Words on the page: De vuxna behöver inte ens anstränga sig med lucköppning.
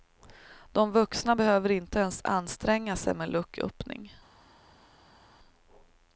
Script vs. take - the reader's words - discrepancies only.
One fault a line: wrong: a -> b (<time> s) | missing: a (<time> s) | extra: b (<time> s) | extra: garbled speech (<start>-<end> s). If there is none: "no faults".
no faults